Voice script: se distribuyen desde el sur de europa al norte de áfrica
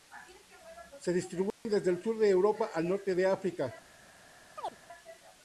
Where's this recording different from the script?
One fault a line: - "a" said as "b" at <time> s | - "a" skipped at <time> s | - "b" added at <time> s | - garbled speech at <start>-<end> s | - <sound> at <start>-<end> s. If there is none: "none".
- dropout at 1.5-1.7 s
- chirp at 4.6-4.8 s